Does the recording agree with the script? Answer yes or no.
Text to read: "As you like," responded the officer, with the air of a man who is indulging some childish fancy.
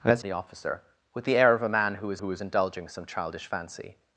no